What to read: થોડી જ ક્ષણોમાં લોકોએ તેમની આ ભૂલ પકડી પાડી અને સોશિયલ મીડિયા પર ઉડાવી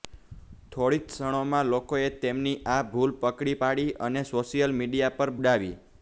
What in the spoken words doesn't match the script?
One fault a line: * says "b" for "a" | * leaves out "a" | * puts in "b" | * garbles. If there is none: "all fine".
all fine